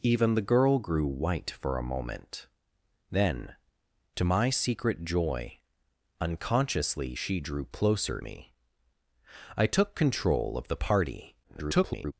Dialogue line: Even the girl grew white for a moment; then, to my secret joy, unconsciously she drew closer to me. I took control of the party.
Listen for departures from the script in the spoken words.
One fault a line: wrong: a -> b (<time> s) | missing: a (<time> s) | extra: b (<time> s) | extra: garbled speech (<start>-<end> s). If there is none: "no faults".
missing: to (8.2 s)
extra: garbled speech (11.4-12.1 s)